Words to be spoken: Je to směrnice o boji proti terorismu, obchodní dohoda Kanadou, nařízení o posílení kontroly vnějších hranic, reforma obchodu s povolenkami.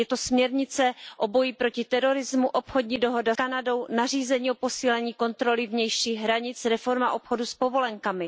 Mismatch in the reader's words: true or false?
false